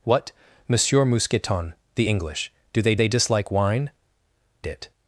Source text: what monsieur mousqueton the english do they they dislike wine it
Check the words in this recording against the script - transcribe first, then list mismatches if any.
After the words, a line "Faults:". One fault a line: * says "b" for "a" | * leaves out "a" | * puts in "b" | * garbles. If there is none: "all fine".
what monsieur mousqueton the english do they they dislike wine it
Faults:
all fine